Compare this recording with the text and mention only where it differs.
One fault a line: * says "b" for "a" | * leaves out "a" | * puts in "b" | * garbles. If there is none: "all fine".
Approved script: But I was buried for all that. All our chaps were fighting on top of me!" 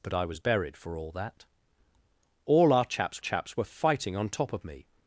* puts in "chaps"